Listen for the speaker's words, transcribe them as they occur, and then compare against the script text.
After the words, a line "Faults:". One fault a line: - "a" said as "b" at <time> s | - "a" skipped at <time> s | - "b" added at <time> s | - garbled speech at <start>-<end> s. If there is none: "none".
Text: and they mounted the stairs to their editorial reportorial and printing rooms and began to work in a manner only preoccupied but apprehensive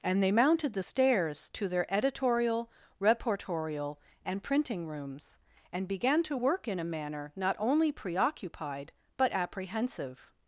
and they mounted the stairs to their editorial reportorial and printing rooms and began to work in a manner not only preoccupied but apprehensive
Faults:
- "not" added at 7.4 s